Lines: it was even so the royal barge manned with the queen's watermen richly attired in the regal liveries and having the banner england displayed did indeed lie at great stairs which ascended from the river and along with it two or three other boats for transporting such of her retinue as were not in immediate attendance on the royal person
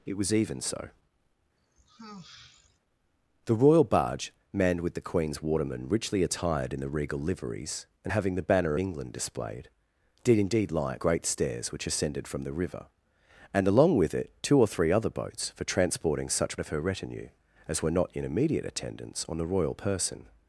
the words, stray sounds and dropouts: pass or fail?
fail